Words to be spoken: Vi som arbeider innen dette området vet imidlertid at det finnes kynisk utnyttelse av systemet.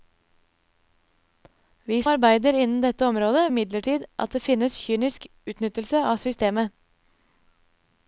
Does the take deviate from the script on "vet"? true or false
true